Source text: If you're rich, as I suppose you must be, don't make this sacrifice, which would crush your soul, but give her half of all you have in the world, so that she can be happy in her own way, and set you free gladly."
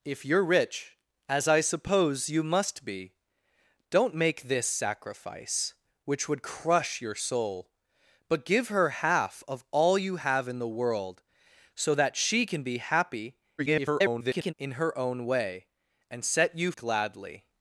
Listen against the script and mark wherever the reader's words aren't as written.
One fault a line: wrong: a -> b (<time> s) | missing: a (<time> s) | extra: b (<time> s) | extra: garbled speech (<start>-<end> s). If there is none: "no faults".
extra: garbled speech (13.6-14.5 s)
missing: free (16.7 s)